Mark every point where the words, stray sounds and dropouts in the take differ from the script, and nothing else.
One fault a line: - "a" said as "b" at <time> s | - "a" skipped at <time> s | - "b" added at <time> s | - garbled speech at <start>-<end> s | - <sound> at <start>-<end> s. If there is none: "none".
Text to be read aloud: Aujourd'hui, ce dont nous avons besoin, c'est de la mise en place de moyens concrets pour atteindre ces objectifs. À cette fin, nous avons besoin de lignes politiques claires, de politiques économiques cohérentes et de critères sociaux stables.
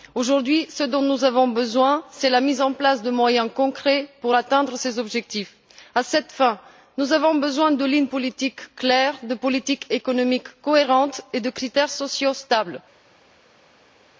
none